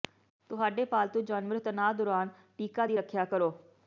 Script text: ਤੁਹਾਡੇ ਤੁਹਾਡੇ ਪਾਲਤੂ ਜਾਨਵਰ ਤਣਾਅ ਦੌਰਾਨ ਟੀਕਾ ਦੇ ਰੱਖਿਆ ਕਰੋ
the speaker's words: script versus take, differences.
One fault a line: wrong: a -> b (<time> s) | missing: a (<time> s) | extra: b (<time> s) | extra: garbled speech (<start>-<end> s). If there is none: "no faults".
missing: ਤੁਹਾਡੇ (0.9 s)
wrong: ਦੇ -> ਦੀ (2.8 s)